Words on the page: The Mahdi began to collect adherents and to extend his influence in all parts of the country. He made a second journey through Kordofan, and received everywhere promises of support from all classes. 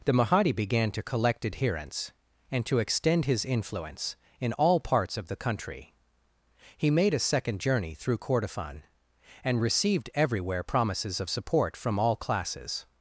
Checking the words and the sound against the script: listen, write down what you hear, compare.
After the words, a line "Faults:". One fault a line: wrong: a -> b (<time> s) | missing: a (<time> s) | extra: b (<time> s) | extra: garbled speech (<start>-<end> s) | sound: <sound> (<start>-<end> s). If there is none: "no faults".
The Mahdi began to collect adherents and to extend his influence in all parts of the country. He made a second journey through Kordofan, and received everywhere promises of support from all classes.
Faults:
no faults